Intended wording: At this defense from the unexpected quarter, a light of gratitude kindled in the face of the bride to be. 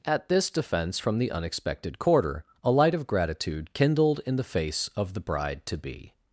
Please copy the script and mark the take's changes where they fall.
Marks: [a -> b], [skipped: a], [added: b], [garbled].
At this defense from the unexpected quarter, a light of gratitude kindled in the face of the bride to be.